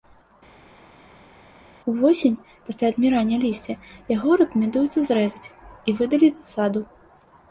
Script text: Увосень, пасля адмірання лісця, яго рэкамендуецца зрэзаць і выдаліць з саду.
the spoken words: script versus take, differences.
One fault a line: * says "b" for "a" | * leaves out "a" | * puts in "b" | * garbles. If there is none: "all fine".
all fine